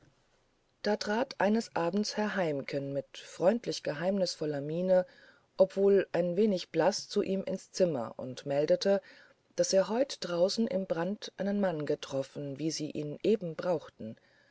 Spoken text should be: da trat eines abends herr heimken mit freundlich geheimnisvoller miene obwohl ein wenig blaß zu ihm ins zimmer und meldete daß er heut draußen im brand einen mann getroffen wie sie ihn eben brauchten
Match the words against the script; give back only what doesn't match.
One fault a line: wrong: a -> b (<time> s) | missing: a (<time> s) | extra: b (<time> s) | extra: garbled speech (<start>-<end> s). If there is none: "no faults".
no faults